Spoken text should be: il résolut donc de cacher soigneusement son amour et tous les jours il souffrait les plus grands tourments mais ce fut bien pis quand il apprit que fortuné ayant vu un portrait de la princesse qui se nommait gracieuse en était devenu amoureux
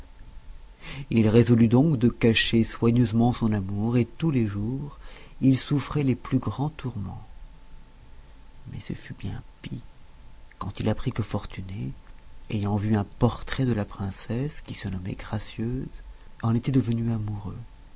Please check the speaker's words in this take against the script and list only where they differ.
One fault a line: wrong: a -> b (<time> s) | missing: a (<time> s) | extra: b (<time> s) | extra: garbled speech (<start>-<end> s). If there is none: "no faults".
no faults